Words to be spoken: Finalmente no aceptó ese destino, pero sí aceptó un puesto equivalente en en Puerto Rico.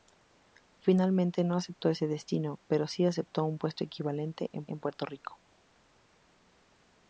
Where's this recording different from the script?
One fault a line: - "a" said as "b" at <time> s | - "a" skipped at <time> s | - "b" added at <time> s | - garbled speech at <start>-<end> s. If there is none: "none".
none